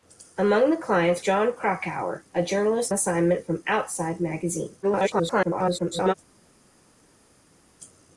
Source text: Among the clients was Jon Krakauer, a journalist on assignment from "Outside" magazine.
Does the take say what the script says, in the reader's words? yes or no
no